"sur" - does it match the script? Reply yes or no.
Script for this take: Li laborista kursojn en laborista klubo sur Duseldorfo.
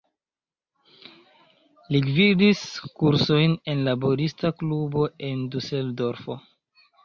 no